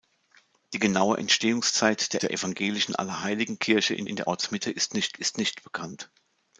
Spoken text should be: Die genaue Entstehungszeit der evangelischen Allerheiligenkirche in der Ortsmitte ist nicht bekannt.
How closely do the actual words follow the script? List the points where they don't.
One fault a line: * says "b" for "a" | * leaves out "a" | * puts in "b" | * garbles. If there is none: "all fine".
* puts in "der"
* puts in "in"
* puts in "ist nicht"